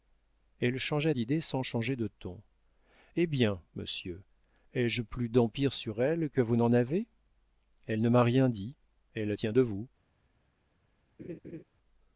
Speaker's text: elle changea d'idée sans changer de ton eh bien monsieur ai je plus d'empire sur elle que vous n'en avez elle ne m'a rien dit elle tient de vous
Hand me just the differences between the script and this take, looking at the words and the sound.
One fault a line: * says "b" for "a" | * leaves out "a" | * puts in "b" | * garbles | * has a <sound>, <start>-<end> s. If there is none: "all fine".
* has a laugh, 11.2-11.6 s